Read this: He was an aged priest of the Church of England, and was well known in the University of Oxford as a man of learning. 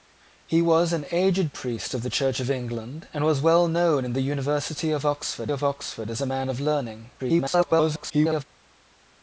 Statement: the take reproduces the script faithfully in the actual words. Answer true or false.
false